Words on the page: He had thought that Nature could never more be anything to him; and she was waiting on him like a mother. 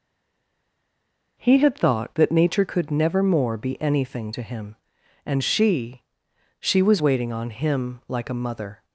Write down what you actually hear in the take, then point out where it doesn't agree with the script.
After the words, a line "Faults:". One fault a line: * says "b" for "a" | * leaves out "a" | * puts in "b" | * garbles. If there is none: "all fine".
He had thought that Nature could never more be anything to him; and she she was waiting on him like a mother.
Faults:
* puts in "she"